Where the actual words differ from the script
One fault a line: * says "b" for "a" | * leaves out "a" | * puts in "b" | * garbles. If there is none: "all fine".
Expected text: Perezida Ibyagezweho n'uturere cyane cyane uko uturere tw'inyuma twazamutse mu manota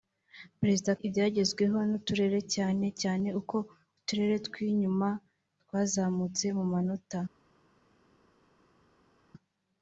all fine